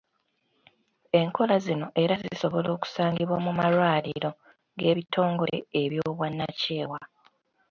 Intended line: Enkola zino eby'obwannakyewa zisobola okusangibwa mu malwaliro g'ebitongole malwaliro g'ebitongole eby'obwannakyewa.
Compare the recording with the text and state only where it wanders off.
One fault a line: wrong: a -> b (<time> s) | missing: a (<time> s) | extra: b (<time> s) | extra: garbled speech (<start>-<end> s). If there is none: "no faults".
wrong: eby'obwannakyewa -> era (2.0 s)
missing: malwaliro g'ebitongole (5.6 s)